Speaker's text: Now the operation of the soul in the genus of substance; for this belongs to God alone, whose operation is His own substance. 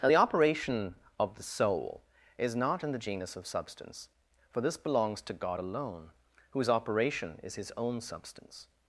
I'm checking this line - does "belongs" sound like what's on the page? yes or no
yes